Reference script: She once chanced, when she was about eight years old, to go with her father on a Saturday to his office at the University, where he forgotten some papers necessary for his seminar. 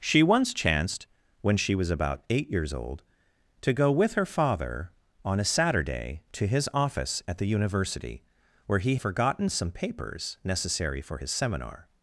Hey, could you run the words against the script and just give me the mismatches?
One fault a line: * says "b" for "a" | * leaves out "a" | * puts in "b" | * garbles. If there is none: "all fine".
all fine